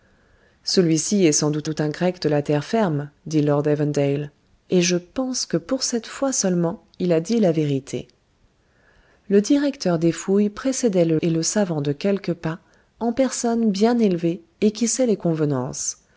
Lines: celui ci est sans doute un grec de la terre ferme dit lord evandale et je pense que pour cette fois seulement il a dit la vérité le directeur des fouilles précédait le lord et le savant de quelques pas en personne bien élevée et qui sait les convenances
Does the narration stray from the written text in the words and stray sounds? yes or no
yes